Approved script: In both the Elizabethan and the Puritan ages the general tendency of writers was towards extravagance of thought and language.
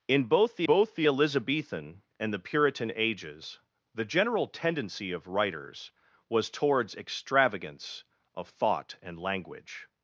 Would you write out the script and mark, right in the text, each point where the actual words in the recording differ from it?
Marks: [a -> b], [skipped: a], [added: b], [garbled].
In both the [added: both the] Elizabethan and the Puritan ages the general tendency of writers was towards extravagance of thought and language.